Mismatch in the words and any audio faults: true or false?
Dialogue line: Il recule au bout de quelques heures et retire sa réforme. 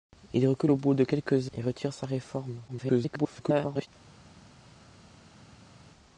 true